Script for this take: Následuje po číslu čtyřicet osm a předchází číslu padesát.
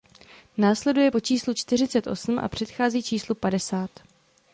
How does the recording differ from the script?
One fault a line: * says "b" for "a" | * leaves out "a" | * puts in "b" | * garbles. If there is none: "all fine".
all fine